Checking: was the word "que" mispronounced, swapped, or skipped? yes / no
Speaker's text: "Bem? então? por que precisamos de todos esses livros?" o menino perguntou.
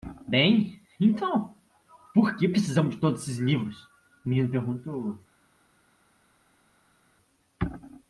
no